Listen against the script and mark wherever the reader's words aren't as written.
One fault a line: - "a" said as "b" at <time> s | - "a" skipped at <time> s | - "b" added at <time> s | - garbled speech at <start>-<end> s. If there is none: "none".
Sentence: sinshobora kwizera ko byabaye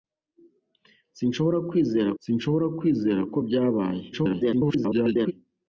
- "sinshobora kwizera" added at 2.2 s
- garbled speech at 4.1-5.3 s